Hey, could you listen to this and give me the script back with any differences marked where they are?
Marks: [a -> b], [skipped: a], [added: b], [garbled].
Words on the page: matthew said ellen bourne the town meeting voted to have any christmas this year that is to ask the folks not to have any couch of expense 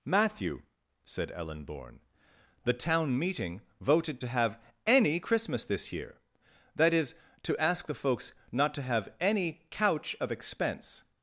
matthew said ellen bourne the town meeting voted to have any christmas this year that is to ask the folks not to have any couch of expense